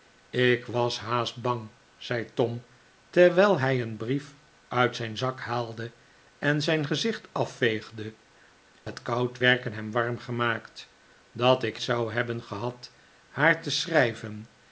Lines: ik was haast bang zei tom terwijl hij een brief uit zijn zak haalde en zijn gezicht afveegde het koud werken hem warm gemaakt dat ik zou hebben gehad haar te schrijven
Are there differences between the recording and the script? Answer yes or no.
no